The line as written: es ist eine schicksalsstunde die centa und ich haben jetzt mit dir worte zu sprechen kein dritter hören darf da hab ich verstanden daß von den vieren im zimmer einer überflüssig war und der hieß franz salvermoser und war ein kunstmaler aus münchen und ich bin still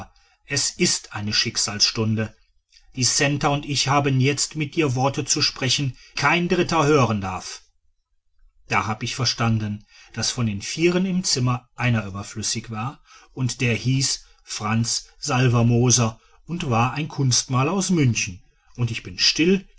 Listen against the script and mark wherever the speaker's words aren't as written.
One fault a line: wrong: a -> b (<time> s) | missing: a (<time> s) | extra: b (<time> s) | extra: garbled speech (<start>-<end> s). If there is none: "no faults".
no faults